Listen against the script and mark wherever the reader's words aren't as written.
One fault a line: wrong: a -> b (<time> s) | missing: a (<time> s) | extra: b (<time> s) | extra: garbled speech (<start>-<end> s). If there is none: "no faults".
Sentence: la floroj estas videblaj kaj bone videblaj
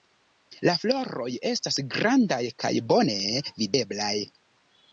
wrong: videblaj -> grandaj (2.0 s)